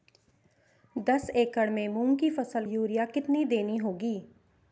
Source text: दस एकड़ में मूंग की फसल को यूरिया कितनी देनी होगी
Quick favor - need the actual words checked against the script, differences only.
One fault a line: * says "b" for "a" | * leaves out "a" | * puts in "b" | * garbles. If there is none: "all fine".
* leaves out "को"